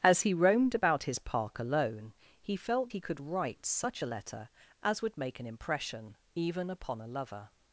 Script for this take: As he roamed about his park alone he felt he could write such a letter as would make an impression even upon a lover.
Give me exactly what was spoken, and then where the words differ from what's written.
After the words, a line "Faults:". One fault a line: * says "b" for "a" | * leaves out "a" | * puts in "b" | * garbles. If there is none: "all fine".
As he roamed about his park alone he felt he could write such a letter as would make an impression even upon a lover.
Faults:
all fine